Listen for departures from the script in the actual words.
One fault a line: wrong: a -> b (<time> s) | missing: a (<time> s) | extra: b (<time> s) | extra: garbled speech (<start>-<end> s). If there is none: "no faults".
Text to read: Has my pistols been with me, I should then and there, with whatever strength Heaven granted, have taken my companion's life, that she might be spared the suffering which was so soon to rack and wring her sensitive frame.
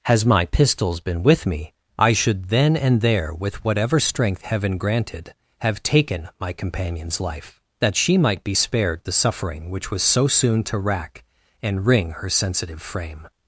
no faults